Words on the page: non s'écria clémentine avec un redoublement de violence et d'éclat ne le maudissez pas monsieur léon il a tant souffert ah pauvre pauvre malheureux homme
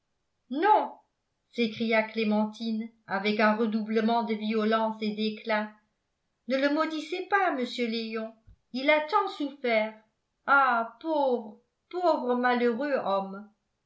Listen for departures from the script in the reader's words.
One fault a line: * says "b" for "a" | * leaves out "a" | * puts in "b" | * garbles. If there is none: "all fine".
all fine